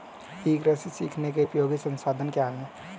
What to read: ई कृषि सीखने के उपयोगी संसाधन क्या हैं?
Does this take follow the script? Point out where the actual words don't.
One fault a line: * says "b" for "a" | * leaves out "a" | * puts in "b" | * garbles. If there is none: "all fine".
all fine